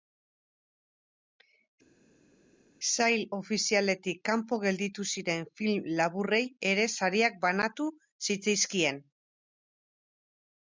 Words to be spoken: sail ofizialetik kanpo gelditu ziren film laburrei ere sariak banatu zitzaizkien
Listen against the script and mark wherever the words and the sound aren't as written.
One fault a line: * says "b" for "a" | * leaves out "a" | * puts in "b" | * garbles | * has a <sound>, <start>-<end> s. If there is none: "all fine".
all fine